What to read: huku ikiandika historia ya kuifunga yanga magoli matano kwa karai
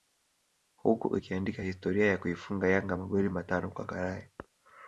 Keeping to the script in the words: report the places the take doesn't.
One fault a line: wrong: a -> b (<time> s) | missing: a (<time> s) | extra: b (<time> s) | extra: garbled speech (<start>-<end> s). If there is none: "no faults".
no faults